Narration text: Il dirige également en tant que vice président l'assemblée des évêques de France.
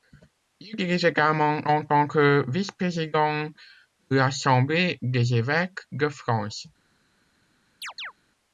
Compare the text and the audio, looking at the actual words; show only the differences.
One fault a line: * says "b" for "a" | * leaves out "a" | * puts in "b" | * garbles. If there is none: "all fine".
all fine